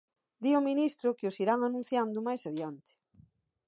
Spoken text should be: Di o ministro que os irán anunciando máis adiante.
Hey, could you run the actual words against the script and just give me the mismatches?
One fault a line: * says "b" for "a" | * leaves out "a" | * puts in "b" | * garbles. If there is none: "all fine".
all fine